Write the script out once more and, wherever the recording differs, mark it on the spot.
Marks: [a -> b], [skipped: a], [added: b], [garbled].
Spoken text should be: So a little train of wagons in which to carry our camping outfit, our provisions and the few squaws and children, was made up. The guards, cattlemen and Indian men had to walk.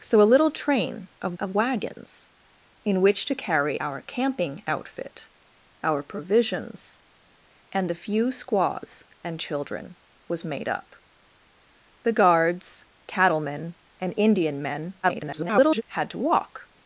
So a little train of [added: of] wagons in which to carry our camping outfit, our provisions and the few squaws and children, was made up. The guards, cattlemen and Indian men [garbled] had to walk.